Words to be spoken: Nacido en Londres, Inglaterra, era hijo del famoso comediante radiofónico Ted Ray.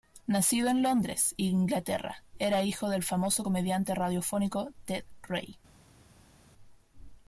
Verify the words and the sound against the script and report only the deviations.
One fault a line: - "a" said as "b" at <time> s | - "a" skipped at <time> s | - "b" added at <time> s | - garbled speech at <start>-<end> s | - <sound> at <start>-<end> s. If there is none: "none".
none